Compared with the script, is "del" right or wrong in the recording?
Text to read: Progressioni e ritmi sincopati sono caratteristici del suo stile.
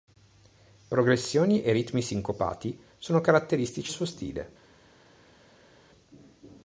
wrong